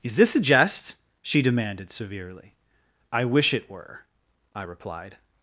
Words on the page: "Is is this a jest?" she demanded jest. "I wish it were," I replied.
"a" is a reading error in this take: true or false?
false